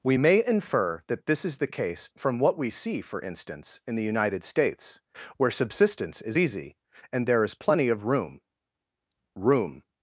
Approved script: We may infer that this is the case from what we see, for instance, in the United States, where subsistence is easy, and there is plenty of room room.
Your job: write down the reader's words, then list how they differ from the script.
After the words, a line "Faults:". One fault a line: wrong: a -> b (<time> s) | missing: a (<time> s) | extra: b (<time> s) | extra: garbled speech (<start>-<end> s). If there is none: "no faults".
We may infer that this is the case from what we see, for instance, in the United States, where subsistence is easy, and there is plenty of room room.
Faults:
no faults